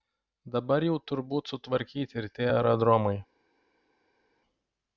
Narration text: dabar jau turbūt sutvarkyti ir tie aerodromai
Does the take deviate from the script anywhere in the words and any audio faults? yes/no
no